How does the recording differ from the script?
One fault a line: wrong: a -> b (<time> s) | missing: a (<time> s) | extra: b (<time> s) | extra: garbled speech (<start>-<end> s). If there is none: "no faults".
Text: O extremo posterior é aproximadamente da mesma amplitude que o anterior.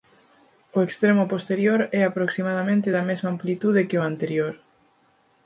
no faults